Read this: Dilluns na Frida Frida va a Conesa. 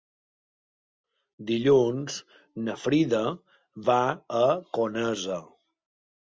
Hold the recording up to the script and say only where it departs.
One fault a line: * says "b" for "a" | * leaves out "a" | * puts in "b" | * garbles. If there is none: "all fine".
* leaves out "Frida"